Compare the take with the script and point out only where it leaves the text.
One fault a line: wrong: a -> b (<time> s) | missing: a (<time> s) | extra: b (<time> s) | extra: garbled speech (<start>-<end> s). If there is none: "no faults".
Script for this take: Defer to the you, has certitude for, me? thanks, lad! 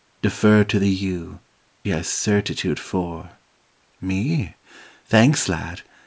no faults